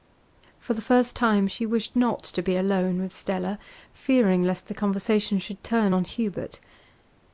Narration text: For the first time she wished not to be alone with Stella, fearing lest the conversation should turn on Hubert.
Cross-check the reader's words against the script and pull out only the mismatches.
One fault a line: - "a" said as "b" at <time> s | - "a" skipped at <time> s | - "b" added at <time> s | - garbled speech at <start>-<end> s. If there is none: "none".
none